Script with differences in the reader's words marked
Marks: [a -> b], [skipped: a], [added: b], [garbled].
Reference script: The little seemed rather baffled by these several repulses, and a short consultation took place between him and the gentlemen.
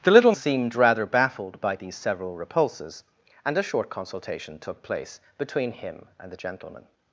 The little seemed rather baffled by these several repulses, and a short consultation took place between him and the gentlemen.